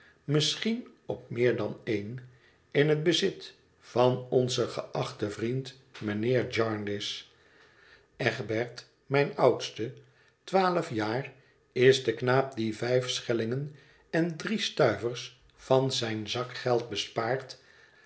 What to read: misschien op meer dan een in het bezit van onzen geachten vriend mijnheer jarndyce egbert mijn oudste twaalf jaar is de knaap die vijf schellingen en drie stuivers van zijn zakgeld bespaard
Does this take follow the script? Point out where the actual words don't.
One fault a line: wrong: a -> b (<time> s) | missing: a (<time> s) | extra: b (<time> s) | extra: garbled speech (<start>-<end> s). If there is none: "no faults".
no faults